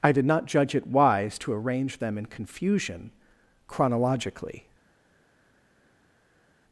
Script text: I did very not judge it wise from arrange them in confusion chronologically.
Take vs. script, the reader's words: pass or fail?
fail